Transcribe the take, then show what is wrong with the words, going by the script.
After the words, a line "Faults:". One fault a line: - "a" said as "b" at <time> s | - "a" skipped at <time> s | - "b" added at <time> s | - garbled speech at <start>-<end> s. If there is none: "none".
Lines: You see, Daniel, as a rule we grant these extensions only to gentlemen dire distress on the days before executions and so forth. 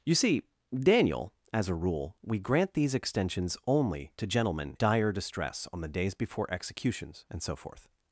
You see, Daniel, as a rule we grant these extensions only to gentlemen dire distress on the days before executions and so forth.
Faults:
none